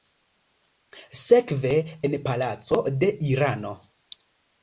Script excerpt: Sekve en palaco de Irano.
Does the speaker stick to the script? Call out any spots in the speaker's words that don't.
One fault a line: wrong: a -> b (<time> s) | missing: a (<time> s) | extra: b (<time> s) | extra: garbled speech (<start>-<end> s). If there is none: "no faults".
no faults